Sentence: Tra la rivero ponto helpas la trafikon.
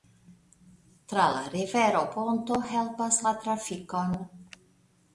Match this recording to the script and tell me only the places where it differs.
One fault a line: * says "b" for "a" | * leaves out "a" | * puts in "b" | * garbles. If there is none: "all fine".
all fine